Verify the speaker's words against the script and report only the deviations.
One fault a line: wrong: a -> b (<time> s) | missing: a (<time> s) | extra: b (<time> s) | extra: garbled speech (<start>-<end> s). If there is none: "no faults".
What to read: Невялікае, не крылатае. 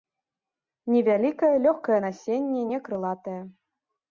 extra: лёгкае насенне (1.6 s)